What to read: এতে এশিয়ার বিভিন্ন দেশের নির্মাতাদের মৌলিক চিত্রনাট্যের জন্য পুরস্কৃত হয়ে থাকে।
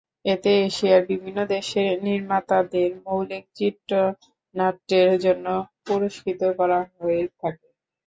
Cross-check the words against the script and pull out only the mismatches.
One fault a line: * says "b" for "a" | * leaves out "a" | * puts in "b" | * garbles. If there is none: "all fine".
* puts in "করা"